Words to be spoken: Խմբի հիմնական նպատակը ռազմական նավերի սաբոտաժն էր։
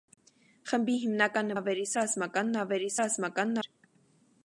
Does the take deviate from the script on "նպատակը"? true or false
true